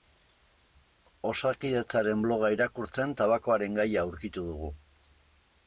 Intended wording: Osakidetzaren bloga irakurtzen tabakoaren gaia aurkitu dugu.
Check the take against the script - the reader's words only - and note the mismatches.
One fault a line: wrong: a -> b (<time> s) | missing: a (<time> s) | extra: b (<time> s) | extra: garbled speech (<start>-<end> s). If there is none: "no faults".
no faults